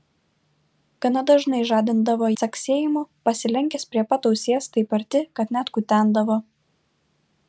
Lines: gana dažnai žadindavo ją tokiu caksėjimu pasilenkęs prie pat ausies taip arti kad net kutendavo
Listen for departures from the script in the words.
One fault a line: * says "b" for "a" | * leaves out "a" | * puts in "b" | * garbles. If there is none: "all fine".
* leaves out "ją tokiu"